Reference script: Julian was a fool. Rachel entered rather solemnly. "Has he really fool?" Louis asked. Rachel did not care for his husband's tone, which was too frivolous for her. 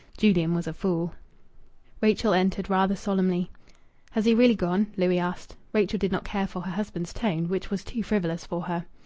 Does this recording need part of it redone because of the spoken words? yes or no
yes